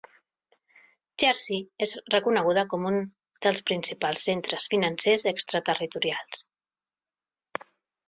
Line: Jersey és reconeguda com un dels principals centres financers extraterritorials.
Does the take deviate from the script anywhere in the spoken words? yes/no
no